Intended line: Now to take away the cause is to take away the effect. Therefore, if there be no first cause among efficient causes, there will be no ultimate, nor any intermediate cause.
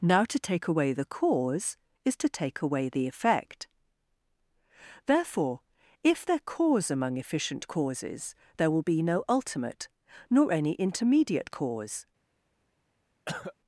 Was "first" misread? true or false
true